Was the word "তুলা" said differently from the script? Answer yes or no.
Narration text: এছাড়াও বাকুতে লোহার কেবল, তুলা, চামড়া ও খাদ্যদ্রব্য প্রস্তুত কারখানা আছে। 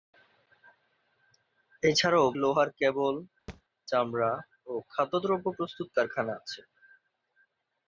yes